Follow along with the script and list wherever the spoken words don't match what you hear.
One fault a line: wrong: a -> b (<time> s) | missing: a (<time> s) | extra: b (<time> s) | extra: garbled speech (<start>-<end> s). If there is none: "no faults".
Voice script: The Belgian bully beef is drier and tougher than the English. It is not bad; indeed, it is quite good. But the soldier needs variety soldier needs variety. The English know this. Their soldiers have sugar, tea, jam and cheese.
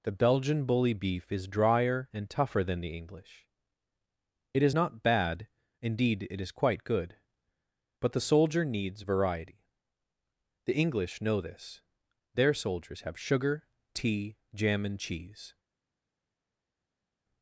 missing: soldier needs variety (9.6 s)